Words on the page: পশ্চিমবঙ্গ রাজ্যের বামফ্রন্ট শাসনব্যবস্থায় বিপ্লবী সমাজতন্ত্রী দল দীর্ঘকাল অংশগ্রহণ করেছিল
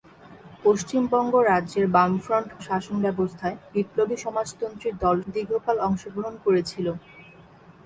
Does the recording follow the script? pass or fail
pass